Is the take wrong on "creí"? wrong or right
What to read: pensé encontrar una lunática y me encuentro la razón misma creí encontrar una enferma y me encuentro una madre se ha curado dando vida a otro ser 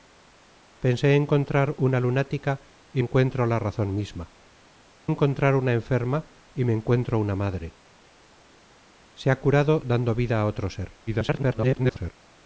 wrong